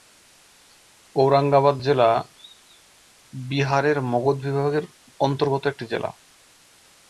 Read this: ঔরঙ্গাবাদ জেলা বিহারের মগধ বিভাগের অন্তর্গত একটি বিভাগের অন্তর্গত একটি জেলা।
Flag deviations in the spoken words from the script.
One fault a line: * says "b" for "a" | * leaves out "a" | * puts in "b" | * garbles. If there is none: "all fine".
* leaves out "বিভাগের অন্তর্গত একটি"